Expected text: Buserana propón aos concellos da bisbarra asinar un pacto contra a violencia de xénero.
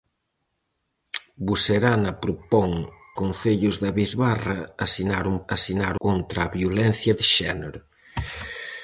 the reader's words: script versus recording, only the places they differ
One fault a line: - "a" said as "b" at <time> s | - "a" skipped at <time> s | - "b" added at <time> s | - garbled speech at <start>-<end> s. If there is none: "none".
- "aos" skipped at 2.7 s
- "pacto" said as "asinar" at 5.6 s